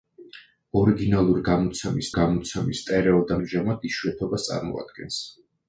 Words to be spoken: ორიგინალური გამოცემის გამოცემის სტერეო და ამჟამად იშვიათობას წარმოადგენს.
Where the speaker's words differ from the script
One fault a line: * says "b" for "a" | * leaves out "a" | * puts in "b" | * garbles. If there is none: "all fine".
all fine